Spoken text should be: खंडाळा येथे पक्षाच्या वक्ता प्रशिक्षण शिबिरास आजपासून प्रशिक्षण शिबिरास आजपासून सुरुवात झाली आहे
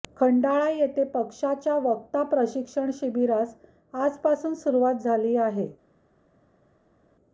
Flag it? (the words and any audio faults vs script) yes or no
yes